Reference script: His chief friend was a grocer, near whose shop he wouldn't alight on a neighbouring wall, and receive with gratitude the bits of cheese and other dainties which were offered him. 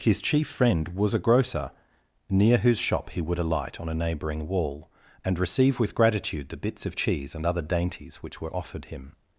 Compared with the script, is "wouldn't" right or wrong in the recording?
wrong